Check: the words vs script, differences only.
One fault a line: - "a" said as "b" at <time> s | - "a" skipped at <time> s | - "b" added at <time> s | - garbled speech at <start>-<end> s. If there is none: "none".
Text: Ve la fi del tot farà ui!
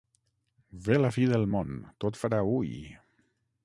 - "món" added at 1.6 s